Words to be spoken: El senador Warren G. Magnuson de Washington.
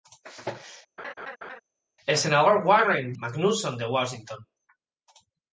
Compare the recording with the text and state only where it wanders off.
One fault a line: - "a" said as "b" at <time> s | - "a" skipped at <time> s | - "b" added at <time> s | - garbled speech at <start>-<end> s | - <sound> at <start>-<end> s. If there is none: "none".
- laugh at 1.0-1.6 s
- "G" skipped at 3.1 s